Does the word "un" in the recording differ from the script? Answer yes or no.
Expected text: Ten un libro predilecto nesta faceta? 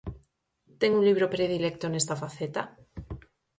no